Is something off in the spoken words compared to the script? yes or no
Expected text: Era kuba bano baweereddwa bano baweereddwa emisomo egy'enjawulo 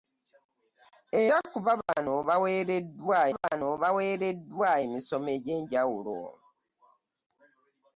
no